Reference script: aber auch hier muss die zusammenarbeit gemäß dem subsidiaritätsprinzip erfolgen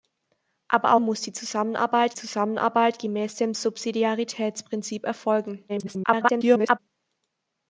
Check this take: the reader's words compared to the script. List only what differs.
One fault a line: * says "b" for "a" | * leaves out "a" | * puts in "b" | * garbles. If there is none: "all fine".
* leaves out "auch hier"
* puts in "zusammenarbeit"
* garbles